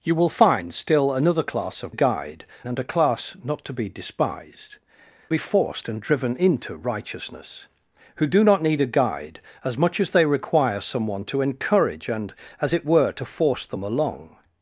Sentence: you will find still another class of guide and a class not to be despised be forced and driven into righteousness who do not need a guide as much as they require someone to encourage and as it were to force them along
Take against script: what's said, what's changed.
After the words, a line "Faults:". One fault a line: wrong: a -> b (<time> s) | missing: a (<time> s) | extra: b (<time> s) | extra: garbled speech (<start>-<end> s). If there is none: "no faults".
you will find still another class of guide and a class not to be despised be forced and driven into righteousness who do not need a guide as much as they require someone to encourage and as it were to force them along
Faults:
no faults